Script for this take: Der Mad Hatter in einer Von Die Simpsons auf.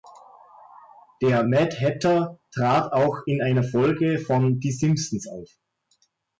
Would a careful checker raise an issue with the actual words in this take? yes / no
yes